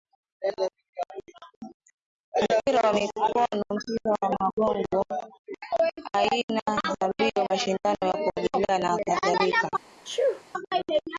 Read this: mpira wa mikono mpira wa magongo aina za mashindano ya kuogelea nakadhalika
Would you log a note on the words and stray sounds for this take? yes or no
yes